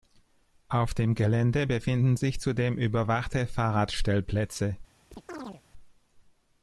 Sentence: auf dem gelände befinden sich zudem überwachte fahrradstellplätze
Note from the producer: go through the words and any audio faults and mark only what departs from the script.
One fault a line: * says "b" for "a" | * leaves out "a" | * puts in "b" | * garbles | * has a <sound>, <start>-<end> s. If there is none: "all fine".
* has a chirp, 5.1-5.6 s